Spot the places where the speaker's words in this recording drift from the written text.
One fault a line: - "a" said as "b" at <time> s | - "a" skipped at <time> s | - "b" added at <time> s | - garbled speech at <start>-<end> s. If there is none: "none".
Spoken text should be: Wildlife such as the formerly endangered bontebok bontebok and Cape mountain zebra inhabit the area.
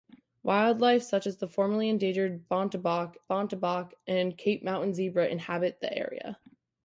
none